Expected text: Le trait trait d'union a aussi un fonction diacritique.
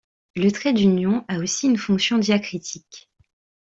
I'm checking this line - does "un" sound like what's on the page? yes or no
no